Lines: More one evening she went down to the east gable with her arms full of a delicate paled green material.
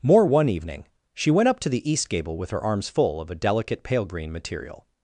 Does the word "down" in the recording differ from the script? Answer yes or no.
yes